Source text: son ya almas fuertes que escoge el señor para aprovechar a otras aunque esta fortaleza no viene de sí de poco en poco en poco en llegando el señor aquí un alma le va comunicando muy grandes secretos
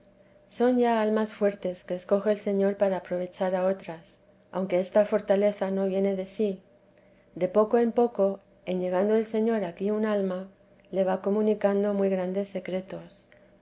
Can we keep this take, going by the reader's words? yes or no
no